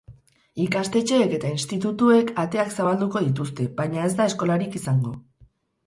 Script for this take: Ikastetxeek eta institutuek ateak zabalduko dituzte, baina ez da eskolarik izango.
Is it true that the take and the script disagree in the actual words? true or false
false